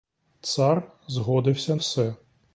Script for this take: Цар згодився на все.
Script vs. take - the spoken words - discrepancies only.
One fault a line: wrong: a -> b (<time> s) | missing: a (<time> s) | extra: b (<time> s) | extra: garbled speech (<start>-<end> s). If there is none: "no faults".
missing: на (1.8 s)